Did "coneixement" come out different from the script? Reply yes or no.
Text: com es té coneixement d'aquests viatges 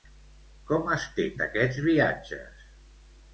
yes